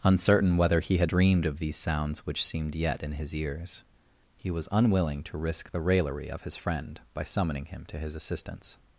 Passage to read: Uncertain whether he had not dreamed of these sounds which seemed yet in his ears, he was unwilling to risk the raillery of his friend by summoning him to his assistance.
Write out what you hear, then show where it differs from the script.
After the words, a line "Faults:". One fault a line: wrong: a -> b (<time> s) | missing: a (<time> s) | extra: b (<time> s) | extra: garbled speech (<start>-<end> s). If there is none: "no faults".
Uncertain whether he had dreamed of these sounds which seemed yet in his ears, he was unwilling to risk the raillery of his friend by summoning him to his assistance.
Faults:
missing: not (1.1 s)